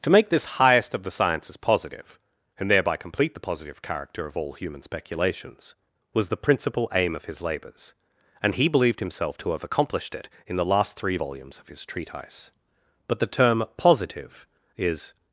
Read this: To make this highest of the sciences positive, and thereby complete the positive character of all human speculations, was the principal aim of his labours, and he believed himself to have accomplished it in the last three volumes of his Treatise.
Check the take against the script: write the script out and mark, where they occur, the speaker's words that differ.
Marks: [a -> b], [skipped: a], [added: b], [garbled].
To make this highest of the sciences positive, and thereby complete the positive character of all human speculations, was the principal aim of his labours, and he believed himself to have accomplished it in the last three volumes of his Treatise. [added: But the term Positive is]